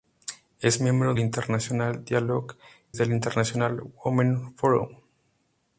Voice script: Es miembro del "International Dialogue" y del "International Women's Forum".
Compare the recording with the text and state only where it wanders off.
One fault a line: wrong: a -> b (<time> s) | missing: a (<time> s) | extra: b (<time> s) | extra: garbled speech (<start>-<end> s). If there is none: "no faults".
missing: del (1.1 s)
missing: y (2.6 s)